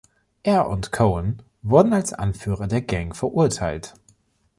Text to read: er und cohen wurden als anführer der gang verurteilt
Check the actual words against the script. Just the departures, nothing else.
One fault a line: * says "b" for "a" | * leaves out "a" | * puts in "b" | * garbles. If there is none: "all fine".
all fine